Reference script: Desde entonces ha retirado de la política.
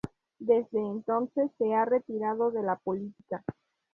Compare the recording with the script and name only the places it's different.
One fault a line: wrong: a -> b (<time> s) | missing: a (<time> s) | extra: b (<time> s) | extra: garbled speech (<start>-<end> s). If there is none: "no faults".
extra: se (1.6 s)